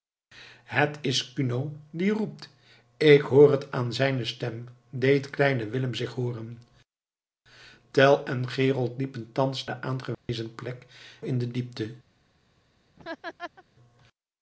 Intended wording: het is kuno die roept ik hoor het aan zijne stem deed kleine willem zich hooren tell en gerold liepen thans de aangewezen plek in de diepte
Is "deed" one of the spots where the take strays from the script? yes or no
no